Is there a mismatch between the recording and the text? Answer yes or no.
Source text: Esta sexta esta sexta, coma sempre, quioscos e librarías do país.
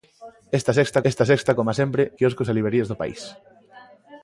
no